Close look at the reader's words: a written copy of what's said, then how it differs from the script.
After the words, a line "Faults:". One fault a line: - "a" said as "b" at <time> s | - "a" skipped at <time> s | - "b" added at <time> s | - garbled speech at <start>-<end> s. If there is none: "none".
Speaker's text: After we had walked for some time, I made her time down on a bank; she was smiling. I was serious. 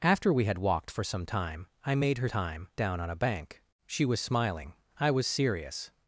After we had walked for some time, I made her time down on a bank; she was smiling. I was serious.
Faults:
none